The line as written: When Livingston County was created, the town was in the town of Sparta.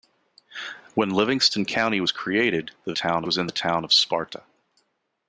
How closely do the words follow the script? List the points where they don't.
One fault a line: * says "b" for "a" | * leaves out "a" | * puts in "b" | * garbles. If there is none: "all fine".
all fine